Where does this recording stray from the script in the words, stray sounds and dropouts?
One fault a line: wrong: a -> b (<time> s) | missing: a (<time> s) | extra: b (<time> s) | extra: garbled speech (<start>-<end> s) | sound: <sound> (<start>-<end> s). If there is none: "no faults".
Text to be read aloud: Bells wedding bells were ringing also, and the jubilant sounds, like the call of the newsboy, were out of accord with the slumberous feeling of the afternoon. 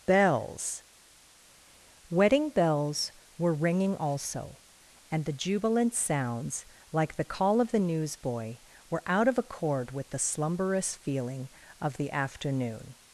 no faults